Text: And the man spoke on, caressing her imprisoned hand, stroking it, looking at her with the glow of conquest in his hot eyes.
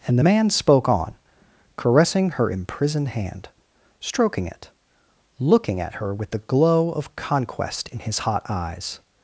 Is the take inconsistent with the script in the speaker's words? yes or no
no